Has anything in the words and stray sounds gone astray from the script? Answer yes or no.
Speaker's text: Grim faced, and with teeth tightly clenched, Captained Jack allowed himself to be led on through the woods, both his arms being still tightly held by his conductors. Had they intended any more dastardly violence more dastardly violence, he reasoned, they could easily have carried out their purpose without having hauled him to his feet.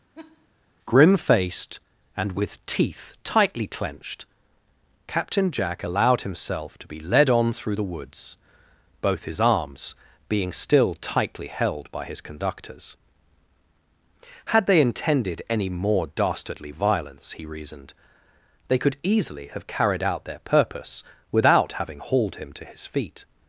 yes